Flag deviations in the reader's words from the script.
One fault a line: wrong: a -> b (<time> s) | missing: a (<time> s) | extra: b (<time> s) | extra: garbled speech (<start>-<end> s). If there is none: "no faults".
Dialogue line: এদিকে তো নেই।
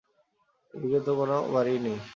extra: কোনো বাড়িই (1.2 s)